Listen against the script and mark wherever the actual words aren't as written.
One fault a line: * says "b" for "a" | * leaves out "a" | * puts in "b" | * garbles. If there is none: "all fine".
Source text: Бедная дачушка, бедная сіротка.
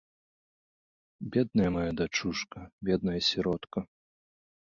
* puts in "мая"